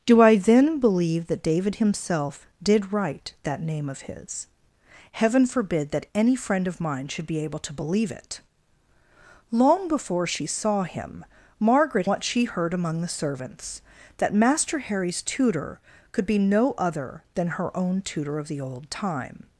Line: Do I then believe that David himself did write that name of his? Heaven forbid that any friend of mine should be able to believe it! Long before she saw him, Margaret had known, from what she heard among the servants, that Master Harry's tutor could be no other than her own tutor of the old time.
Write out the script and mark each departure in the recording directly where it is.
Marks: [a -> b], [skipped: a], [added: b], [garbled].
Do I then believe that David himself did write that name of his? Heaven forbid that any friend of mine should be able to believe it! Long before she saw him, Margaret [skipped: had known, from] what she heard among the servants, that Master Harry's tutor could be no other than her own tutor of the old time.